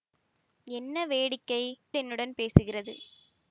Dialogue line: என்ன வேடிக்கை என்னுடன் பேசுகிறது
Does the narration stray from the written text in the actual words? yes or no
no